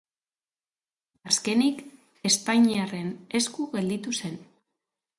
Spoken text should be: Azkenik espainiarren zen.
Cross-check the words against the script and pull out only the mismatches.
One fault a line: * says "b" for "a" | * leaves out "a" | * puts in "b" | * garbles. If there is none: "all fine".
* puts in "esku gelditu"